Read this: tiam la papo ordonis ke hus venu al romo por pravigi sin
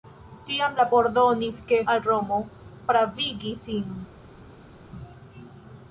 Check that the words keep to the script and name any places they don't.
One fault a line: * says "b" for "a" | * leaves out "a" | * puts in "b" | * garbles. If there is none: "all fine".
* leaves out "papo"
* leaves out "hus venu"
* leaves out "por"